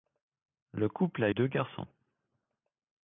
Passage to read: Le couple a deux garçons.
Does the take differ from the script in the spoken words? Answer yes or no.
no